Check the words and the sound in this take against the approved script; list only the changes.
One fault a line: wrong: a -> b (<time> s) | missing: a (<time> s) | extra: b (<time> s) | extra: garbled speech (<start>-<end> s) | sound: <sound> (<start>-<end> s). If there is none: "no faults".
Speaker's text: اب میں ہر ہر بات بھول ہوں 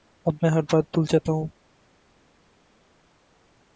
missing: ہر (0.6 s)
extra: جاتا (1.1 s)